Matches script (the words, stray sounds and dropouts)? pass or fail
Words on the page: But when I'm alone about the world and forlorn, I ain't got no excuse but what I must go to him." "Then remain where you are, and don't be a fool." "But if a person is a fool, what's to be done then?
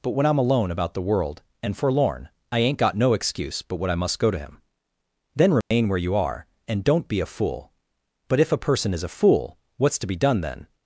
fail